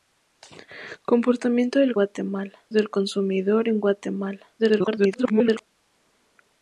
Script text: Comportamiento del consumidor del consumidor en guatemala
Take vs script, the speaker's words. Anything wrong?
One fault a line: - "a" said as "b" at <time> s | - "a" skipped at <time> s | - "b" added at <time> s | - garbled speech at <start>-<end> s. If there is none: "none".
- "consumidor" said as "guatemala" at 1.9 s
- garbled speech at 4.6-5.7 s